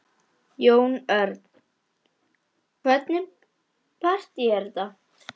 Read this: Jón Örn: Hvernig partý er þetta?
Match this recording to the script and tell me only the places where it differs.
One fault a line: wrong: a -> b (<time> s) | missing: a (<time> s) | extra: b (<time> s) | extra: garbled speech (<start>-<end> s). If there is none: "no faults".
no faults